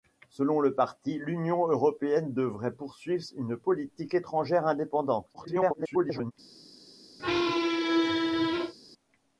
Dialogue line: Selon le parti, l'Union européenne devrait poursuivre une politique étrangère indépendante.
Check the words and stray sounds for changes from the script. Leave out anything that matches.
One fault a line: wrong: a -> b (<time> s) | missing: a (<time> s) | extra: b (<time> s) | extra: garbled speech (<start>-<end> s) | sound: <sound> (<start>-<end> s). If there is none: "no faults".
extra: garbled speech (5.3-6.3 s)
sound: squeak (7.2-8.7 s)